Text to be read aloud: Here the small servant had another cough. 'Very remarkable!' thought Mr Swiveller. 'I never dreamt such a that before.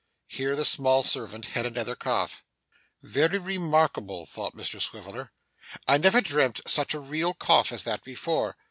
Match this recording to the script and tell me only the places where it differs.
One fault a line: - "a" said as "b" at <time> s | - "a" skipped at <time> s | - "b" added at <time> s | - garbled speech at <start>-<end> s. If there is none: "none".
- "real cough as" added at 7.0 s